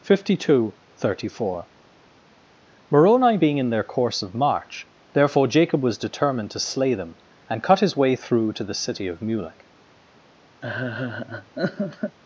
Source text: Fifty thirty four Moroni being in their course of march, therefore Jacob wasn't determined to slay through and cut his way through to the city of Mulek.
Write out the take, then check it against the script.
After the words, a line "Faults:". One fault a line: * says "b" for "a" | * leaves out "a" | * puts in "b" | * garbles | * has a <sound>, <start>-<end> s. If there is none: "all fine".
Fifty two thirty four Moroni being in their course of march, therefore Jacob was determined to slay them and cut his way through to the city of Mulek.
Faults:
* puts in "two"
* says "was" for "wasn't"
* says "them" for "through"
* has a laugh, 10.6-12.2 s